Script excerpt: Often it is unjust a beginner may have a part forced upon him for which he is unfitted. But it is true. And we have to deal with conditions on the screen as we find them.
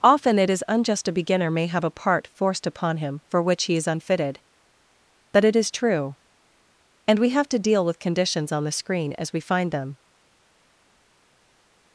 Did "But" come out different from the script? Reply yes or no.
no